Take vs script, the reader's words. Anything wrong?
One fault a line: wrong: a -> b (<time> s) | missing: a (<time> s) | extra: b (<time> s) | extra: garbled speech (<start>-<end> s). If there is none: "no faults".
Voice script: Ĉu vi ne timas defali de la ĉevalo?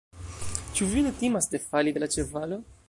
no faults